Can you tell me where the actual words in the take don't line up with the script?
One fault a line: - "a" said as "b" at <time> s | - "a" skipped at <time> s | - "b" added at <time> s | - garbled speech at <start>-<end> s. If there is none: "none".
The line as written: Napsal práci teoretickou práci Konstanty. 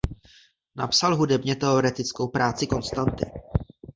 - "práci" said as "hudebně" at 1.1 s